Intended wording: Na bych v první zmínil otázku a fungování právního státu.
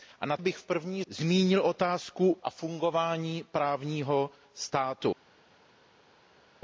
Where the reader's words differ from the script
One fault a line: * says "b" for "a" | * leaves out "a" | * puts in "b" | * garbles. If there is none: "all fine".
all fine